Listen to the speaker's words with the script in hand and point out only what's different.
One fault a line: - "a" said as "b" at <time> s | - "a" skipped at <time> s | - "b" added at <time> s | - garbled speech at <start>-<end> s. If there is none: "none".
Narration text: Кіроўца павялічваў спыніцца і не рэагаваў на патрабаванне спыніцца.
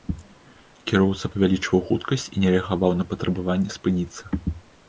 - "спыніцца" said as "хуткасць" at 1.9 s